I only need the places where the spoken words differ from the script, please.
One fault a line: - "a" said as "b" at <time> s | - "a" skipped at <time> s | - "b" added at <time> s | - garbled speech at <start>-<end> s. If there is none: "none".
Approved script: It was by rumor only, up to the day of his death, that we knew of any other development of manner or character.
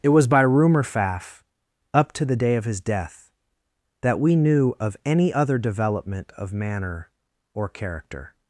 - "only" said as "faff" at 0.8 s